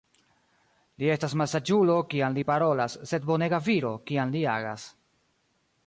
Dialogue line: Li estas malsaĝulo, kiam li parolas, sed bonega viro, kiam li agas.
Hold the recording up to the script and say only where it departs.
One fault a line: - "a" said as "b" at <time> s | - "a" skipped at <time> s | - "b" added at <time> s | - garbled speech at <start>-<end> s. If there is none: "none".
none